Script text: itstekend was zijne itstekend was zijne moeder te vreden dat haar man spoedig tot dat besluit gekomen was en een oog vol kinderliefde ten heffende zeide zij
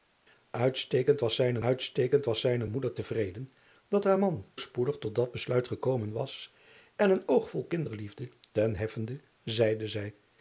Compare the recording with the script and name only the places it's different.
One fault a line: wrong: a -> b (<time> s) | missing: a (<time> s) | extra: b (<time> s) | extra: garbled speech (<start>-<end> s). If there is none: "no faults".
no faults